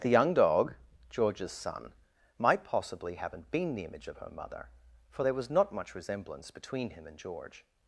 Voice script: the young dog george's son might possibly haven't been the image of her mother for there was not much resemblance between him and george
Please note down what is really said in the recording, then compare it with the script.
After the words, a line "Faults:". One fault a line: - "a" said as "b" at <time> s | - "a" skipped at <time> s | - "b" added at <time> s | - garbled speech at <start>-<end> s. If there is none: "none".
the young dog george's son might possibly haven't been the image of her mother for there was not much resemblance between him and george
Faults:
none